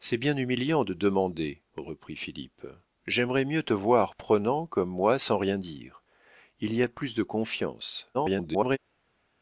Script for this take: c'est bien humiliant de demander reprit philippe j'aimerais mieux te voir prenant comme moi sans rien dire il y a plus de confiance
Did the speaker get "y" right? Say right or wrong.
right